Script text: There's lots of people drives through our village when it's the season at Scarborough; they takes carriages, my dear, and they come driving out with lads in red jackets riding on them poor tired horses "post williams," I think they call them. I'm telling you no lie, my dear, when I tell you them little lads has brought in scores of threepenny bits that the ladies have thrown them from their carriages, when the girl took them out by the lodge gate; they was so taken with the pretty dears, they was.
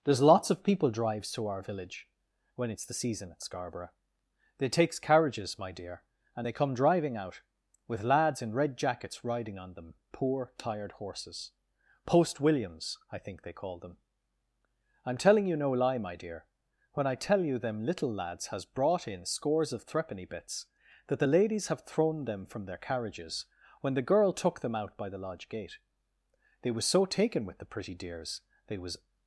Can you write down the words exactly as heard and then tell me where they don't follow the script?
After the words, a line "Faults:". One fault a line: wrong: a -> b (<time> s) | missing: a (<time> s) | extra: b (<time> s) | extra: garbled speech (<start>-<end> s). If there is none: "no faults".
There's lots of people drives to our village when it's the season at Scarborough; they takes carriages, my dear, and they come driving out with lads in red jackets riding on them poor tired horses "post williams," I think they call them. I'm telling you no lie, my dear, when I tell you them little lads has brought in scores of threepenny bits that the ladies have thrown them from their carriages, when the girl took them out by the lodge gate; they was so taken with the pretty dears, they was.
Faults:
wrong: through -> to (1.3 s)